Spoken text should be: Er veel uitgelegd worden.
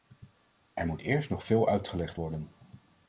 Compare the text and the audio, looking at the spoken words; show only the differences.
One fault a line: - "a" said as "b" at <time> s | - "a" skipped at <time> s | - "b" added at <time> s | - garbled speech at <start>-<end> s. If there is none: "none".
- "moet eerst nog" added at 0.8 s